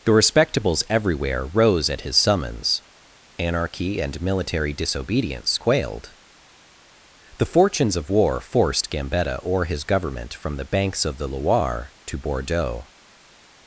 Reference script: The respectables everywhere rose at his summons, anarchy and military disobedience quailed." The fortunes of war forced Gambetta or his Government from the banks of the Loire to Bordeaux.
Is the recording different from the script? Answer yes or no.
no